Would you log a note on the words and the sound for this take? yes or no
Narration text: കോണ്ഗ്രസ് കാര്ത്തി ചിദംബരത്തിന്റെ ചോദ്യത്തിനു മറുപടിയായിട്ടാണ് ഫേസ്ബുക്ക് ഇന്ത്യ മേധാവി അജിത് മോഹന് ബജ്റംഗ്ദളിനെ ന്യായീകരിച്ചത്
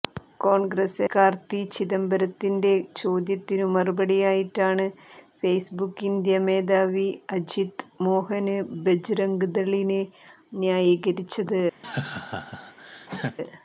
yes